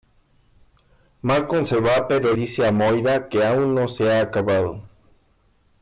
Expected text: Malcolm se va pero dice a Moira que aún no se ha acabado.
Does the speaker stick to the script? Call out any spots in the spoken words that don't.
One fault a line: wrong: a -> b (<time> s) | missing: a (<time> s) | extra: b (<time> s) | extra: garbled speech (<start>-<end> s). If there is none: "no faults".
no faults